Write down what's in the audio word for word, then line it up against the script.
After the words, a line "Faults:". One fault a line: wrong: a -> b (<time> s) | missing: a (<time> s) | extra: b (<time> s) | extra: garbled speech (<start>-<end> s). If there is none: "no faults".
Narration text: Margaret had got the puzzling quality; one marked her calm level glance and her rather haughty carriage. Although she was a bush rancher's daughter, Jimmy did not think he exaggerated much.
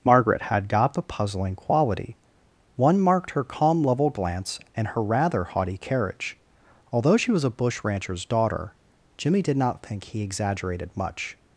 Margaret had got the puzzling quality; one marked her calm level glance and her rather haughty carriage. Although she was a bush rancher's daughter, Jimmy did not think he exaggerated much.
Faults:
no faults